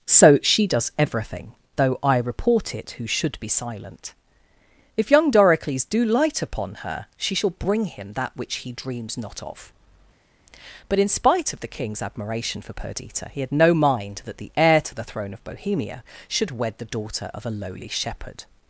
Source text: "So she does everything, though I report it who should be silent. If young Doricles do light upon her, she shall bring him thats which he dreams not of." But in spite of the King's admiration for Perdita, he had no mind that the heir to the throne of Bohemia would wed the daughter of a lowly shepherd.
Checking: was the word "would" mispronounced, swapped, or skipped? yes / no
yes